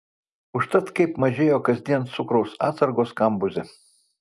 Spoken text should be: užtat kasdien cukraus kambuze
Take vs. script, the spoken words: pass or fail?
fail